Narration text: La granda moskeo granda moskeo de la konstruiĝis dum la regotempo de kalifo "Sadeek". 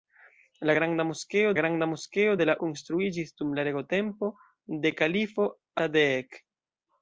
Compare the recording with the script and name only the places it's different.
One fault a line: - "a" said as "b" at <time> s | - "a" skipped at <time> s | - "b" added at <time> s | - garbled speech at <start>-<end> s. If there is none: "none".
none